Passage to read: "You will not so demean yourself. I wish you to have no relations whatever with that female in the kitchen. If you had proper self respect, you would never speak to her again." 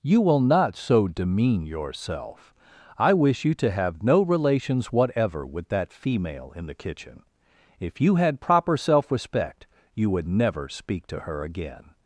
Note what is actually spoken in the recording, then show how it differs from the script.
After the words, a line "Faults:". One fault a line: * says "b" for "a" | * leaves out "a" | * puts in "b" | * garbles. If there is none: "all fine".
"You will not so demean yourself. I wish you to have no relations whatever with that female in the kitchen. If you had proper self respect, you would never speak to her again."
Faults:
all fine